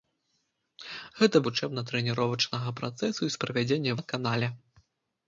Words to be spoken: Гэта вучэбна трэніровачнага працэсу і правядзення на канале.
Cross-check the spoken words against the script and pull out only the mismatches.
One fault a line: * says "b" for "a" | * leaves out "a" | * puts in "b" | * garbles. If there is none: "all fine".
all fine